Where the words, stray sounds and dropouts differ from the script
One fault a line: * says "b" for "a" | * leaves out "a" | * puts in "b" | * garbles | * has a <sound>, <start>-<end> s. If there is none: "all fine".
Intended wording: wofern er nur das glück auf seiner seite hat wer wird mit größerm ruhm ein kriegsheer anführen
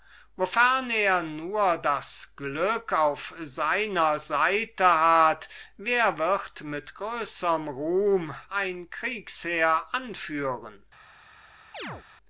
* has a chirp, 11.7-12.0 s